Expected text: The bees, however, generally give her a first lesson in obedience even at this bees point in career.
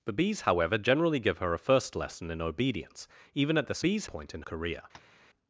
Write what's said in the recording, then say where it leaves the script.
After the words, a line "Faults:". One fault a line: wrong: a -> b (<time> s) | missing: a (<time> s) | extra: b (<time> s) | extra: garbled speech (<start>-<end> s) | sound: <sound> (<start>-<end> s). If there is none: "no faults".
The bees, however, generally give her a first lesson in obedience even at this bees point in career.
Faults:
sound: tap (4.9-5.2 s)